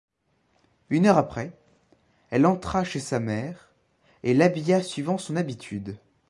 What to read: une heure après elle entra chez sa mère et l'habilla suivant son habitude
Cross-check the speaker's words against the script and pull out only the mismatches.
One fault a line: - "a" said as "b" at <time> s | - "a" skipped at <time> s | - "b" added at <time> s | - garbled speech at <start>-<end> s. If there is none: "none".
none